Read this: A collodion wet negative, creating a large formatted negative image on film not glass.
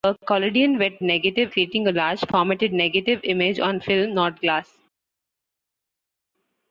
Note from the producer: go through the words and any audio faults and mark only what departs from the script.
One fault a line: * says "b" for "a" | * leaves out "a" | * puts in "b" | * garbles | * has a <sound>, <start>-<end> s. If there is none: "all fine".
all fine